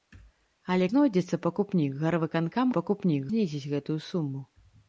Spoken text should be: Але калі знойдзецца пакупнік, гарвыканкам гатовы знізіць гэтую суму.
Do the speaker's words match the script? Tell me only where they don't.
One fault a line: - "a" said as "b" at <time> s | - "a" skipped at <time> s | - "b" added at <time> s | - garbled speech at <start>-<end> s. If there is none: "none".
- "калі" skipped at 0.9 s
- "гатовы" said as "пакупнік" at 2.8 s